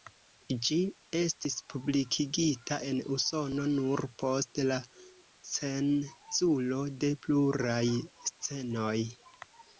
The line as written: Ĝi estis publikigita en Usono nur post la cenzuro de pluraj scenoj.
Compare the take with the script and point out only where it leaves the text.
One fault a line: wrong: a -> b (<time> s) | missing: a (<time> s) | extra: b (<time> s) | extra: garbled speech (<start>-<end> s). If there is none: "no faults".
no faults